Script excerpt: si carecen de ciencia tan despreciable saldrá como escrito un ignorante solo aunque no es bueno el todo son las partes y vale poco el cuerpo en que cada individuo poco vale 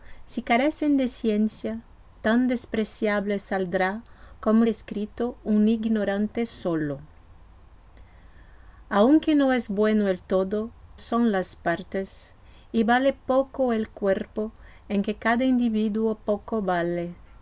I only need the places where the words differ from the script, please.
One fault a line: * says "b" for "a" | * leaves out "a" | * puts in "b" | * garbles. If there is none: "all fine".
all fine